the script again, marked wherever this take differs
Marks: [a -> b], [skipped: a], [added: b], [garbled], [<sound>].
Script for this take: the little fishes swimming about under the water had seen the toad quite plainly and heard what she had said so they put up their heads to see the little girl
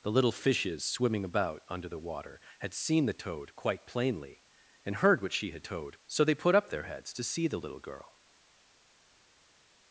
the little fishes swimming about under the water had seen the toad quite plainly and heard what she had [said -> toad] so they put up their heads to see the little girl